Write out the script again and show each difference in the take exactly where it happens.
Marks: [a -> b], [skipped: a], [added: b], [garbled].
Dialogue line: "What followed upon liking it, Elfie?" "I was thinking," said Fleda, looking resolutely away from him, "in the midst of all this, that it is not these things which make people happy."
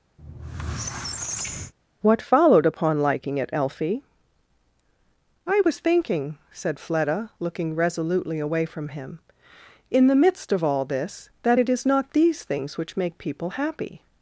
"What followed upon liking it, Elfie?" "I was thinking," said Fleda, looking resolutely away from him, "in the midst of all this, that it is not these things which make people happy."